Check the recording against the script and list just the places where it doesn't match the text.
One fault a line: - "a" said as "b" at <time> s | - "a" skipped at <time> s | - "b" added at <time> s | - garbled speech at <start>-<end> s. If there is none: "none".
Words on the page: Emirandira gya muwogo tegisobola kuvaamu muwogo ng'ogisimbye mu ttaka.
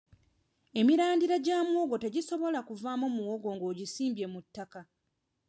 none